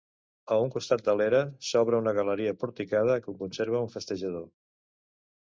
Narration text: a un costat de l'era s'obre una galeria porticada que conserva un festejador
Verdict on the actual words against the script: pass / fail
pass